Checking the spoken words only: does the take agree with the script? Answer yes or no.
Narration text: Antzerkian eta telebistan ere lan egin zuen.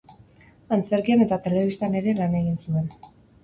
yes